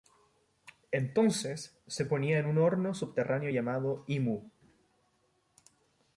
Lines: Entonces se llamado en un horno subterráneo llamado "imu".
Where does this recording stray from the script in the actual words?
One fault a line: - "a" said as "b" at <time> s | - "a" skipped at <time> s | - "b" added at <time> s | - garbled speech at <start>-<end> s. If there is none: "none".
- "llamado" said as "ponía" at 2.0 s